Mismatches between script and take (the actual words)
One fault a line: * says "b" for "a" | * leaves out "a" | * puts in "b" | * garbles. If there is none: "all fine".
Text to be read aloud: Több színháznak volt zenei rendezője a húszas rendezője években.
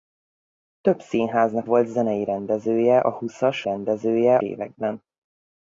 all fine